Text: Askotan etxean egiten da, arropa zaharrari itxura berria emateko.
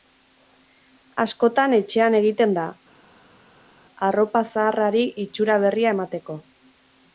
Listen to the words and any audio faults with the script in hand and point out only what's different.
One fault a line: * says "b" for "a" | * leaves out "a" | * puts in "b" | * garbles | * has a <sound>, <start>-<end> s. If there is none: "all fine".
all fine